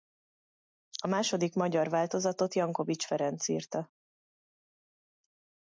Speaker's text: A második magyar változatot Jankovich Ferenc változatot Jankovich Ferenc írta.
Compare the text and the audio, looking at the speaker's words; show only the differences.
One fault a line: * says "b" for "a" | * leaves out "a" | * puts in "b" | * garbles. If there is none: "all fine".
* leaves out "változatot Jankovich Ferenc"